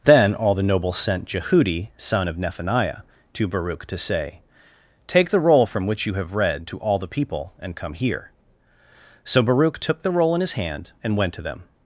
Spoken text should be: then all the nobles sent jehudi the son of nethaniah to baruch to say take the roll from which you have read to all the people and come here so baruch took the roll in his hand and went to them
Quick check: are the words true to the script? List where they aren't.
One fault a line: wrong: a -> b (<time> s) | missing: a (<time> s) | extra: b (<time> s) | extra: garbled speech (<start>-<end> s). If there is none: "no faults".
missing: the (1.9 s)